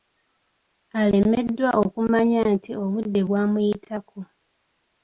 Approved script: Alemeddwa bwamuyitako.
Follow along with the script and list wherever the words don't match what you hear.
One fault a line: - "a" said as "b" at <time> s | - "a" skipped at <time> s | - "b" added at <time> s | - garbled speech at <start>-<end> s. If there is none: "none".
- "okumanya nti obudde" added at 1.8 s